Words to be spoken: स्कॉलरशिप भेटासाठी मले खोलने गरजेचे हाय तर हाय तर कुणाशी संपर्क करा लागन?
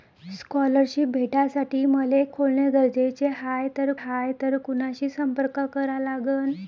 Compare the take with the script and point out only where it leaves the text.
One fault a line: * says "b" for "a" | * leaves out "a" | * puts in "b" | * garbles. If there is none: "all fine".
all fine